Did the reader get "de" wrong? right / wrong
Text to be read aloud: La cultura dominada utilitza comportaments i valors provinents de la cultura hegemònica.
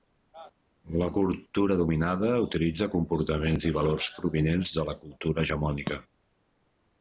right